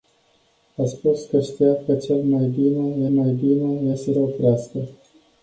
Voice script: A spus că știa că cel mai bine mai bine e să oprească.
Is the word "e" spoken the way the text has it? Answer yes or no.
yes